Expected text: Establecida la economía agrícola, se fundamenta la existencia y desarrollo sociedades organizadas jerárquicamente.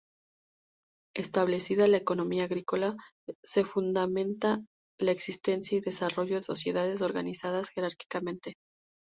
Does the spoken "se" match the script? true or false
true